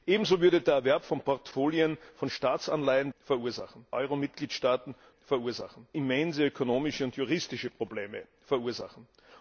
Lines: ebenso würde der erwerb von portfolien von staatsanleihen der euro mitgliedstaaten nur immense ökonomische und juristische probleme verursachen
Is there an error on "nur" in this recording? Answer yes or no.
yes